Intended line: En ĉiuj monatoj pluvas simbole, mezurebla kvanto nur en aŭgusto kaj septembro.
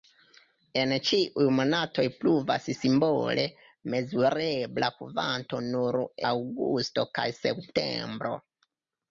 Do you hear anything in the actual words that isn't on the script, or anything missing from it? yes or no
yes